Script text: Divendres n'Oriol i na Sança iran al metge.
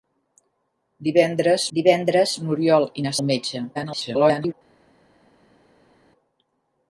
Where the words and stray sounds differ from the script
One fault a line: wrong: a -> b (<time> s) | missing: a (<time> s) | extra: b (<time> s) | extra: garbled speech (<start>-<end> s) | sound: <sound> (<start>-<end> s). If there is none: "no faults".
extra: divendres (1.8 s)
missing: Sança iran (3.1 s)
extra: garbled speech (3.7-4.5 s)